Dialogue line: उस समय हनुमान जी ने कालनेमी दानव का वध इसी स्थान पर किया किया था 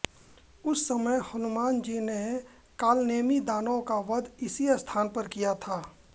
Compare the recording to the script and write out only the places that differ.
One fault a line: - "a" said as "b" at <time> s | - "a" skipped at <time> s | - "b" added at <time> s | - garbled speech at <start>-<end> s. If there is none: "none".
- "किया" skipped at 5.5 s